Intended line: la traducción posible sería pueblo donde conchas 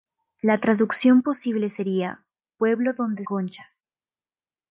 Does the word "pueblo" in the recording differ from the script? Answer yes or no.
no